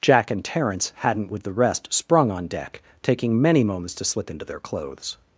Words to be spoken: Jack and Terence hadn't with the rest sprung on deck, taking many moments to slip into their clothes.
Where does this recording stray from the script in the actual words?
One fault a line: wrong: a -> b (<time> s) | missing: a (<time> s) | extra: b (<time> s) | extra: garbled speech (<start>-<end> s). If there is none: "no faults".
no faults